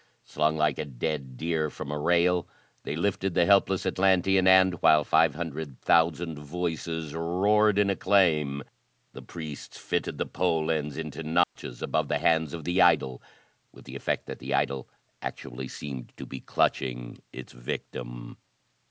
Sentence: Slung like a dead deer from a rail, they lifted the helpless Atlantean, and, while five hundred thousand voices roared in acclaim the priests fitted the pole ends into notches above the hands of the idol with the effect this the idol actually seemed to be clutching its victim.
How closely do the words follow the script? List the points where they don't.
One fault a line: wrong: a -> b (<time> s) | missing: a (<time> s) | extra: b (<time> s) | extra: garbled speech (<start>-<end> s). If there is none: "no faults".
wrong: this -> that (14.3 s)